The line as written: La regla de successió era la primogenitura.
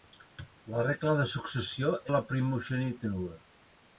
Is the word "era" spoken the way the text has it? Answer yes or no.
no